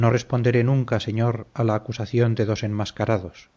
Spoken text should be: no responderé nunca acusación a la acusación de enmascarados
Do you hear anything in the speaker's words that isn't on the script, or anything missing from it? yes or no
yes